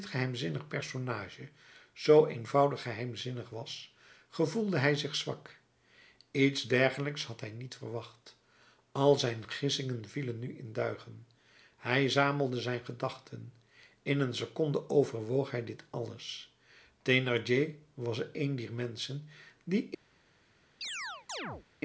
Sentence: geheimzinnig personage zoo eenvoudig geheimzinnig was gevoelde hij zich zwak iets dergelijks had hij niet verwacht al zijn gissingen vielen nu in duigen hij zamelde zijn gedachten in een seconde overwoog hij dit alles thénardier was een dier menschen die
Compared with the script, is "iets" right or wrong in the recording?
right